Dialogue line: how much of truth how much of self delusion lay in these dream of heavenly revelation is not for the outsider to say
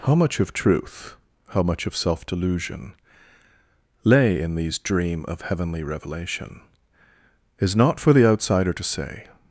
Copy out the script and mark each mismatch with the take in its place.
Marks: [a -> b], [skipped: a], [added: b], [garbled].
how much of truth how much of self delusion lay in these dream of heavenly revelation is not for the outsider to say